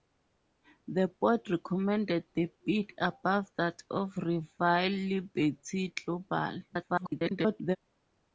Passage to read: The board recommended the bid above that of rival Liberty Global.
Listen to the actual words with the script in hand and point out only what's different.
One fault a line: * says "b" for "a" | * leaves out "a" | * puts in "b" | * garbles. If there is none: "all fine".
* garbles